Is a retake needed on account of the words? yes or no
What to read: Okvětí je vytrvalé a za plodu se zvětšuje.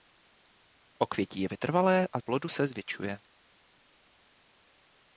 yes